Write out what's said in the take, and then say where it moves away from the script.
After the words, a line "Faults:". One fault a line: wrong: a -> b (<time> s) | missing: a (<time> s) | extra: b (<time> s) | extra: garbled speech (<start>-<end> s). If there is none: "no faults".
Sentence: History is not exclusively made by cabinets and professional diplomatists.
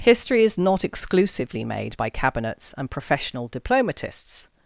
History is not exclusively made by cabinets and professional diplomatists.
Faults:
no faults